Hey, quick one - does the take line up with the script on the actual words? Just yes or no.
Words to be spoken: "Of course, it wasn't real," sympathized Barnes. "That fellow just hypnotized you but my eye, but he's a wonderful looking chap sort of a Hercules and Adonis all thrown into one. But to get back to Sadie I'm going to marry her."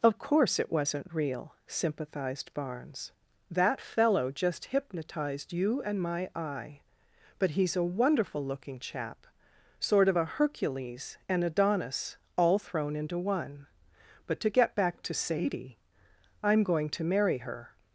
no